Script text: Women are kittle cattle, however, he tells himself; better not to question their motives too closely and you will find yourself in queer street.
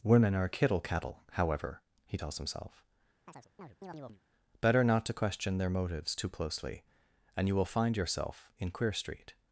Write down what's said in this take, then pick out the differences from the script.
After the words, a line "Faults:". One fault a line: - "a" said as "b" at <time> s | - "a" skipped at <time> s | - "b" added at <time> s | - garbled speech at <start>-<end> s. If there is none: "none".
Women are kittle cattle, however, he tells himself; better not to question their motives too closely and you will find yourself in queer street.
Faults:
none